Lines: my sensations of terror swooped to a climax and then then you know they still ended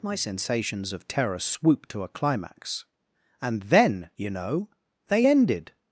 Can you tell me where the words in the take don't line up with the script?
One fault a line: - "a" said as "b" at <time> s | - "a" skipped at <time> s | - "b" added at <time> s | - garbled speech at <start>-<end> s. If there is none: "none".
- "then" skipped at 4.1 s
- "still" skipped at 5.3 s